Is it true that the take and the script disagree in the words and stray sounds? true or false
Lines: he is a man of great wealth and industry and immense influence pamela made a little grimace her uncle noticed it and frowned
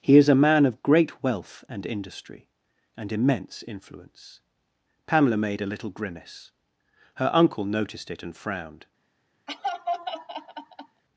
true